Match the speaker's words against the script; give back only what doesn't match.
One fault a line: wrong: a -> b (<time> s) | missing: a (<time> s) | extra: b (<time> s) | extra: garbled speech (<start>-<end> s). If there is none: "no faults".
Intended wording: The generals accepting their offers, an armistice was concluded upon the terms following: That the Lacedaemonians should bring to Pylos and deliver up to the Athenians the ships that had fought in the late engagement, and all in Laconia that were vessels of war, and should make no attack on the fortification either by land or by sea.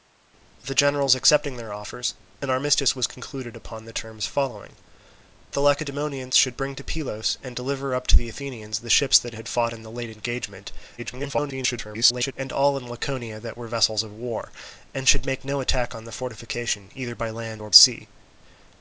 missing: That (4.8 s)
extra: garbled speech (11.0-12.3 s)
missing: by (17.7 s)